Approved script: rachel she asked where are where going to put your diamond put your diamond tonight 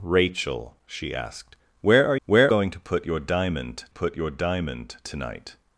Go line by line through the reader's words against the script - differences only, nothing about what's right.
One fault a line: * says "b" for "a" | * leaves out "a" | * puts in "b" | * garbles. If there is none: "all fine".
all fine